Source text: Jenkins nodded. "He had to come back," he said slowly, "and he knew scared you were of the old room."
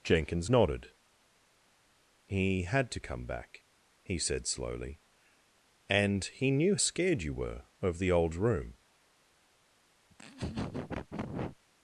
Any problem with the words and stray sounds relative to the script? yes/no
yes